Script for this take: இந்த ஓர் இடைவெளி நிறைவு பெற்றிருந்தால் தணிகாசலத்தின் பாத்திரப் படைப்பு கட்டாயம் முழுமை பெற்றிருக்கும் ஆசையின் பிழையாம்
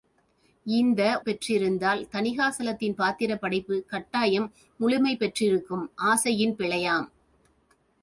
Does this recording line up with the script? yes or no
no